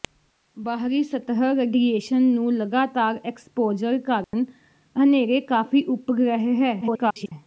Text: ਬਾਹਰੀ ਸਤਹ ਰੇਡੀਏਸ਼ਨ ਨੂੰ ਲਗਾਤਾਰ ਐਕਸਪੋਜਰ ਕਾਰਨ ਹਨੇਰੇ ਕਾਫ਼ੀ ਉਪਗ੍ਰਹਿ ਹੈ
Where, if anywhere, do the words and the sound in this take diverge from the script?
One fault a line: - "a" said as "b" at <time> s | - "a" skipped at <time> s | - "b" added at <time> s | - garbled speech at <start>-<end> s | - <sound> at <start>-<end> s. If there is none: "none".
- dropout at 4.2-4.3 s
- garbled speech at 6.8-7.3 s